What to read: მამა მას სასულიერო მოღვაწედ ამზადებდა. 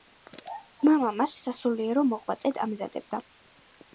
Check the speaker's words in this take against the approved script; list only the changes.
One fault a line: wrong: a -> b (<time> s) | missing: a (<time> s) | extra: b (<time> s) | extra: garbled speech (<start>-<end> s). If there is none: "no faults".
no faults